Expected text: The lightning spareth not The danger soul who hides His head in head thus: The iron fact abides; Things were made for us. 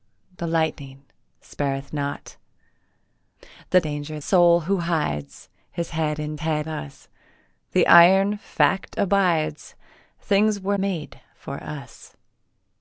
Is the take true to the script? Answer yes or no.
yes